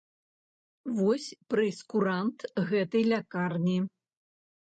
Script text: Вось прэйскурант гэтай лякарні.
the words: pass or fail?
pass